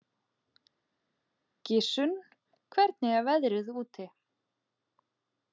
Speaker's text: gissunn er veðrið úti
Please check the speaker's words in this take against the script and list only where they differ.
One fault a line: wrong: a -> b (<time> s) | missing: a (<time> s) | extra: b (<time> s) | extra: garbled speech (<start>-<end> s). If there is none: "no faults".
extra: hvernig (2.8 s)